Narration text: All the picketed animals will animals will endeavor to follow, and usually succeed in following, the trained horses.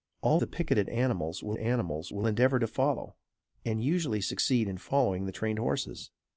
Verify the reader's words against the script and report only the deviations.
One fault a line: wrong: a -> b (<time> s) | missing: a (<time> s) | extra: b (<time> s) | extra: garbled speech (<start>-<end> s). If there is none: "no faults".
no faults